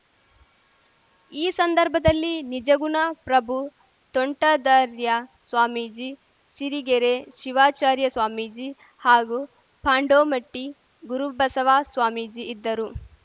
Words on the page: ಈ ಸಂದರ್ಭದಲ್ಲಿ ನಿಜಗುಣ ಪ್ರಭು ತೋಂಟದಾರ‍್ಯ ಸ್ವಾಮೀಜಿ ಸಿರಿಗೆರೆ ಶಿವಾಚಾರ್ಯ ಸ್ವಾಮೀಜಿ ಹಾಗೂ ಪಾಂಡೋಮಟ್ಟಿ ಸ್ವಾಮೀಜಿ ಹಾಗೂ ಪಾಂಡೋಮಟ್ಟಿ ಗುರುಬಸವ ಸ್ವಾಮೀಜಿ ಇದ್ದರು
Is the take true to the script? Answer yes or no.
no